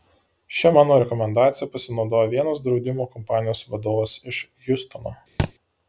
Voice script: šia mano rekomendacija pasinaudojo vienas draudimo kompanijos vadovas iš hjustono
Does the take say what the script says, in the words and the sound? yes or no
no